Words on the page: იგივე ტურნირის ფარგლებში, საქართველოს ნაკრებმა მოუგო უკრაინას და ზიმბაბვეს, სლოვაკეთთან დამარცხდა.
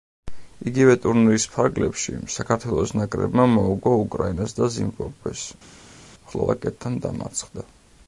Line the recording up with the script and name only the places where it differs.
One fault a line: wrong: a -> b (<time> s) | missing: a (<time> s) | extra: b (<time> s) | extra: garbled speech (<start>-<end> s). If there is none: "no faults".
no faults